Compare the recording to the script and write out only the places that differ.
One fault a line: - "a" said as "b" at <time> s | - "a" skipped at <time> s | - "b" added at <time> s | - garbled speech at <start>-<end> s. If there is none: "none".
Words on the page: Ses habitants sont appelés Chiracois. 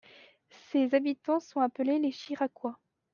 - "les" added at 2.0 s